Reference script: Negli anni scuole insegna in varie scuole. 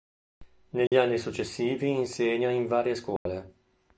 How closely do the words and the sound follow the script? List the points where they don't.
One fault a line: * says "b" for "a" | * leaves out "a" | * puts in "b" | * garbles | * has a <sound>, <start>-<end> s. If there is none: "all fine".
* has a dropout, 0.9-0.9 s
* says "successivi" for "scuole"
* has a dropout, 3.2-3.3 s